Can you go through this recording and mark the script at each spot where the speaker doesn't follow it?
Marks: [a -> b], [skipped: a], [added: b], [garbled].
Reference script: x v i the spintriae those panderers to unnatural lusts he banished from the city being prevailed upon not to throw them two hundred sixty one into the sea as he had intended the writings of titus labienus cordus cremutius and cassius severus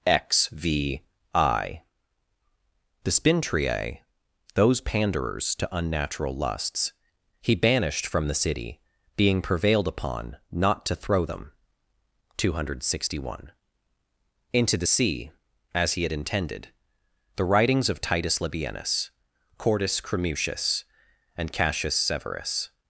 x v i the spintriae those panderers to unnatural lusts he banished from the city being prevailed upon not to throw them two hundred sixty one into the sea as he had intended the writings of titus labienus cordus cremutius and cassius severus